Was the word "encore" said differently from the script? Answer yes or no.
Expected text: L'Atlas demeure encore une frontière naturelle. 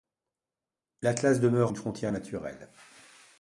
yes